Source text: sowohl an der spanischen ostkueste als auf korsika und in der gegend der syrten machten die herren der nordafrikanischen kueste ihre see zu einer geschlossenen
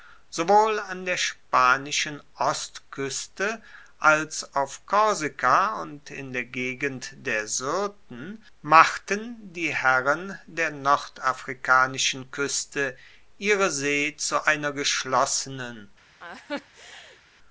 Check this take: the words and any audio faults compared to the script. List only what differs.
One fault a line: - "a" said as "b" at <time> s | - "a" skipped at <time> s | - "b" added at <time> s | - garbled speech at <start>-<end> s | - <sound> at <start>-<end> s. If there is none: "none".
- laugh at 16.2-17.2 s